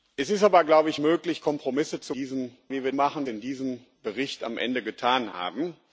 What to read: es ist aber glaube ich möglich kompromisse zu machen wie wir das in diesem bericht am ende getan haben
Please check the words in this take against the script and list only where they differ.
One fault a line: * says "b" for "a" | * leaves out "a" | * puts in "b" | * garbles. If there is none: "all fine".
* says "diesem" for "machen"
* says "machen" for "das"